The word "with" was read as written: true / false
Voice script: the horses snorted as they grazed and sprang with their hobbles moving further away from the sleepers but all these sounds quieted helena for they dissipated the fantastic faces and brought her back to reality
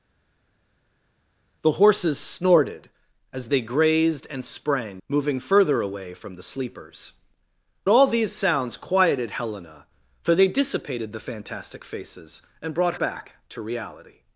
false